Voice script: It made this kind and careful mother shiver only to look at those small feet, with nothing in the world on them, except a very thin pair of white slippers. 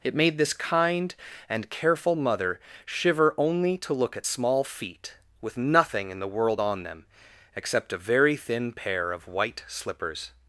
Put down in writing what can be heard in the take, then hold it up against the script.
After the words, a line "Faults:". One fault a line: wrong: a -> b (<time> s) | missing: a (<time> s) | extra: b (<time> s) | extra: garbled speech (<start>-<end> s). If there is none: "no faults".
It made this kind and careful mother shiver only to look at small feet, with nothing in the world on them, except a very thin pair of white slippers.
Faults:
missing: those (4.3 s)